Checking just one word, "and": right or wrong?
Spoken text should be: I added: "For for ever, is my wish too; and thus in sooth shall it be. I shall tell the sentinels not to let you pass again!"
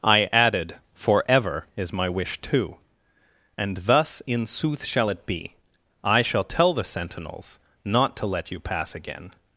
right